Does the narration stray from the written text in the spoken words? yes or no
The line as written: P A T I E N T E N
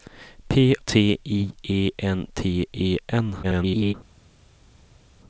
yes